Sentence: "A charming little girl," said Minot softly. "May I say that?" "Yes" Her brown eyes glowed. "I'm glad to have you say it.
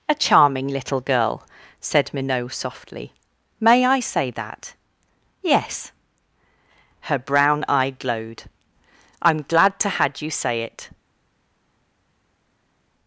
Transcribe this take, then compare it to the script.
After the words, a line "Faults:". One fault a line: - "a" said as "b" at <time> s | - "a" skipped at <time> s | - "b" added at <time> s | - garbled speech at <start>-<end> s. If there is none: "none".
"A charming little girl," said Minot softly. "May I say that?" "Yes" Her brown eye glowed. "I'm glad to had you say it.
Faults:
- "eyes" said as "eye" at 7.7 s
- "have" said as "had" at 9.9 s